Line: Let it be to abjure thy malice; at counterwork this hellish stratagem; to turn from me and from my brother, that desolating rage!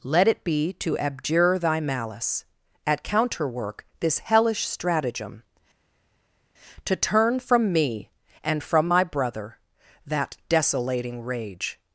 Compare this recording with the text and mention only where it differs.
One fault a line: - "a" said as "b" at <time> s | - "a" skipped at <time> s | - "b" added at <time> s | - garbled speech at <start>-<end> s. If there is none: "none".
none